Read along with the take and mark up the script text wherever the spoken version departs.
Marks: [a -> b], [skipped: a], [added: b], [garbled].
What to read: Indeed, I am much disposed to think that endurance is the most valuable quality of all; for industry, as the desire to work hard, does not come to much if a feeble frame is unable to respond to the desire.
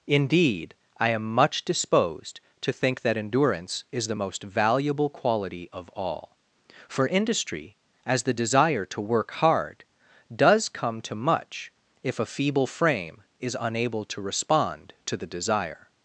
Indeed, I am much disposed to think that endurance is the most valuable quality of all; for industry, as the desire to work hard, does [skipped: not] come to much if a feeble frame is unable to respond to the desire.